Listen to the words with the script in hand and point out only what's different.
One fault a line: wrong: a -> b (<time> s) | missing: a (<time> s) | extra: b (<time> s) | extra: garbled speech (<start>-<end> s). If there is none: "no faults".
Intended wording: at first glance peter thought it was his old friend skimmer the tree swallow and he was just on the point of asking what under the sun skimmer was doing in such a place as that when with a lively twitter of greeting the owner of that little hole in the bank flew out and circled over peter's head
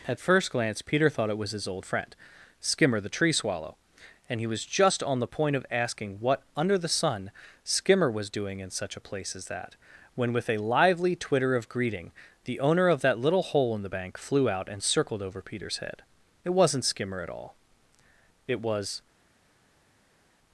extra: it wasn't skimmer at all it was (16.4 s)